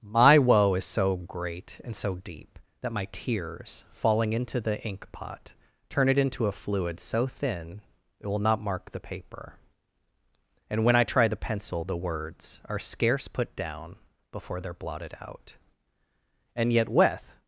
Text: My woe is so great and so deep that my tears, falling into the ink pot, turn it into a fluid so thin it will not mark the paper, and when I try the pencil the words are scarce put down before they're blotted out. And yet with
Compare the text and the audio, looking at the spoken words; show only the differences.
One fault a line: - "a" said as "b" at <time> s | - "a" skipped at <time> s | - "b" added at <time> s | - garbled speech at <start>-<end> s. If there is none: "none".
none